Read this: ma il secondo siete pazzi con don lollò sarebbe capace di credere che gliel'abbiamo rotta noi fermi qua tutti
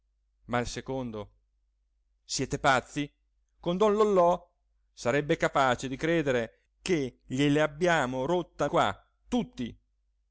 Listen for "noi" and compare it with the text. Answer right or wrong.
wrong